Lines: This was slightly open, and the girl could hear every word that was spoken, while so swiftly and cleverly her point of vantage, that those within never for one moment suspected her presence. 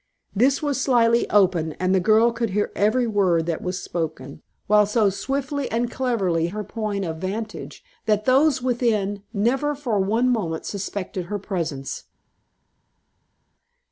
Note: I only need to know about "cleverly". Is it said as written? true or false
true